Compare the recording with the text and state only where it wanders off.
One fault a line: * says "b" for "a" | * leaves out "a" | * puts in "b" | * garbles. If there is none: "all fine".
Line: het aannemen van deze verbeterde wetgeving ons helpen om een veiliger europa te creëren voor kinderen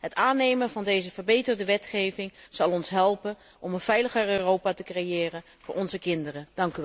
* puts in "zal"
* puts in "onze"